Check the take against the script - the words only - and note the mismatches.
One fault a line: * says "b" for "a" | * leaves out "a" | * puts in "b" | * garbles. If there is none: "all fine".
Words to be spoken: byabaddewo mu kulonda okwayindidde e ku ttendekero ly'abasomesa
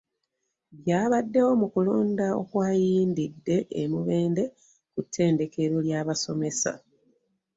* puts in "mubende"